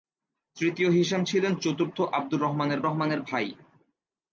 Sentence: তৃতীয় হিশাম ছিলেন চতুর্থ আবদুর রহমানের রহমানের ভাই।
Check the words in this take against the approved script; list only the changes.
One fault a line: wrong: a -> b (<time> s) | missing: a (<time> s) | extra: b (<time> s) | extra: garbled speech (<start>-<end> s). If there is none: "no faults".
no faults